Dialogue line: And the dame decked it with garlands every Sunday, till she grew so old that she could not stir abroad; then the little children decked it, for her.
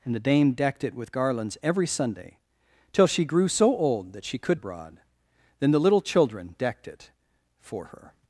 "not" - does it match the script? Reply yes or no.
no